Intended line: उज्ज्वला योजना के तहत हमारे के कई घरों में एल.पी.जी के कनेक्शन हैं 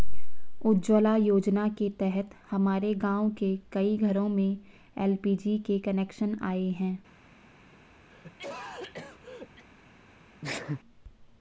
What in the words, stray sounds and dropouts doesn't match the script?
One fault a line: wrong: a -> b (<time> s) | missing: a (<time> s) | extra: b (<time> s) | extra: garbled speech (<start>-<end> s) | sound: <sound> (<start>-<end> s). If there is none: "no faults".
extra: गाँव (3.0 s)
extra: आए (6.4 s)
sound: cough (8.1-9.6 s)
sound: sneeze (10.4-10.8 s)